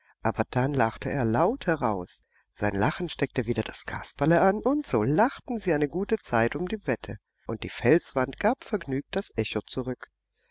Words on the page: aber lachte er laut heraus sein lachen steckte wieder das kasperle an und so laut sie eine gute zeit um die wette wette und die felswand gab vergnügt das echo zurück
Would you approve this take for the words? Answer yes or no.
no